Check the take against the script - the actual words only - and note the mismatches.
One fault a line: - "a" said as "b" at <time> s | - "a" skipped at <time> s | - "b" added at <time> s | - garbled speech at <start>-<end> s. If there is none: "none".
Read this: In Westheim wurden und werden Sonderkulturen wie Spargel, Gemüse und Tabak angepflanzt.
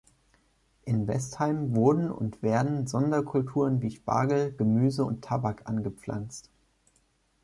none